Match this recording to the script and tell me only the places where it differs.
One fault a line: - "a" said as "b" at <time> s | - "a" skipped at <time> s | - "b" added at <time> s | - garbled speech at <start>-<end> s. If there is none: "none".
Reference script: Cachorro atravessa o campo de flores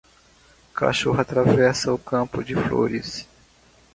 none